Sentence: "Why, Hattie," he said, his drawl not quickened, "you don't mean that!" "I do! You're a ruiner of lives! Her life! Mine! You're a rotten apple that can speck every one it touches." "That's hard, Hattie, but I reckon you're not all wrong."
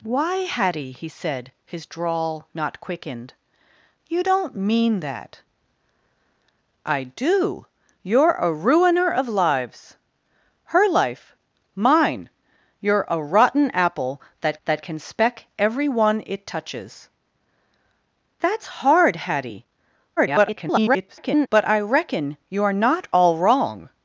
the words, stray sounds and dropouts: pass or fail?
fail